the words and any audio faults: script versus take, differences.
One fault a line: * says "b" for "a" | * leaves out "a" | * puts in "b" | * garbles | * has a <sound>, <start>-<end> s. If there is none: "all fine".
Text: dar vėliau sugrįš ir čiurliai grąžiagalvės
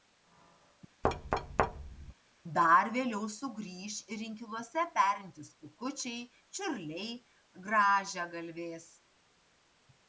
* has a thud, 1.0-2.1 s
* puts in "inkiluose perintys kukučiai"